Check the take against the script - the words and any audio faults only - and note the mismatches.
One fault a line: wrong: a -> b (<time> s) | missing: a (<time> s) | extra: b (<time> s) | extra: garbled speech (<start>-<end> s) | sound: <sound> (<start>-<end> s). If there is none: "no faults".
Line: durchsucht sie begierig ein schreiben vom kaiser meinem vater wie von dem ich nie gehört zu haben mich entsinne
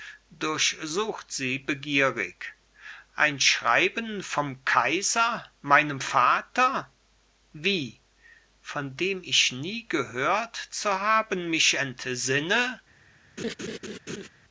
sound: laugh (13.4-14.3 s)